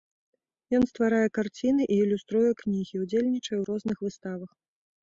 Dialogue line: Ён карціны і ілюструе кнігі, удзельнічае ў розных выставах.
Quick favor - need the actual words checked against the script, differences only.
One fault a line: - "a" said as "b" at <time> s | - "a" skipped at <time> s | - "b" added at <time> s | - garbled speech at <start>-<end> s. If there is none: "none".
- "стварае" added at 0.9 s